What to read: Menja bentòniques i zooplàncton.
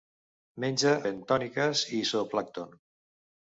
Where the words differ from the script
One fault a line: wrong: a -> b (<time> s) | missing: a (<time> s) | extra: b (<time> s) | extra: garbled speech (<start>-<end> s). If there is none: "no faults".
no faults